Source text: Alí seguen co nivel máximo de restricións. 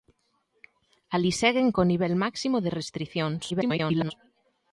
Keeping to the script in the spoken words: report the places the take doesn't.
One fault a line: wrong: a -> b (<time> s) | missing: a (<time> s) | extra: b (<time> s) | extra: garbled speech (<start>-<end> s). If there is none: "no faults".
extra: garbled speech (3.5-4.1 s)